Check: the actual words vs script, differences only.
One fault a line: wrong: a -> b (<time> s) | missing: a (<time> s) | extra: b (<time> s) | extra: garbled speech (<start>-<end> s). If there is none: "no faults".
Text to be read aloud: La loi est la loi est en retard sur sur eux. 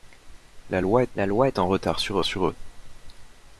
no faults